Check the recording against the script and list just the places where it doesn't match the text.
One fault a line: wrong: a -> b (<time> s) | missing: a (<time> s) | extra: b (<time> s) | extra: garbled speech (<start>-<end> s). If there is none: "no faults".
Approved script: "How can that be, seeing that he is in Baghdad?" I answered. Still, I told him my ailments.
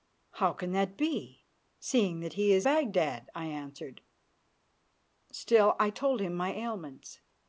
missing: in (2.7 s)